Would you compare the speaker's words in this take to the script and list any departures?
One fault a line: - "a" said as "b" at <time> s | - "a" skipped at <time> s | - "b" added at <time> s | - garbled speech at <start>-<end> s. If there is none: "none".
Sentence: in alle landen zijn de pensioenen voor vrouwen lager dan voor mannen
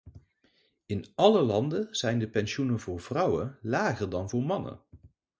none